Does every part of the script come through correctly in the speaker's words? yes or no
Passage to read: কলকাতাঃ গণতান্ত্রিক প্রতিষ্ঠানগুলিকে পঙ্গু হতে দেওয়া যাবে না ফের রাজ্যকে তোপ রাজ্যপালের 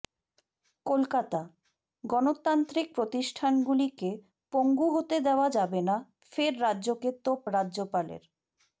yes